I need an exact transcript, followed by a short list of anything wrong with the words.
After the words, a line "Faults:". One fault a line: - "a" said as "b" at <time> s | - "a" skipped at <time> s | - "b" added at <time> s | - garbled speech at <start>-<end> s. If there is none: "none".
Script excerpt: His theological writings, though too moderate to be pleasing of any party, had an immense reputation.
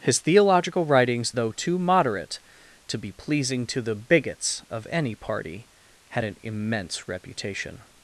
His theological writings, though too moderate to be pleasing to the bigots of any party, had an immense reputation.
Faults:
- "to the bigots" added at 3.7 s